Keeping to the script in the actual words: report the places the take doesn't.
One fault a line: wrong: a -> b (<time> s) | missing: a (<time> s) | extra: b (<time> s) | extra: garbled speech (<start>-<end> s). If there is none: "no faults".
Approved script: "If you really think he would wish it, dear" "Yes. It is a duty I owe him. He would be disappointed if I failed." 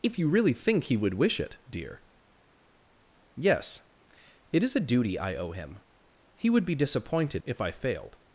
no faults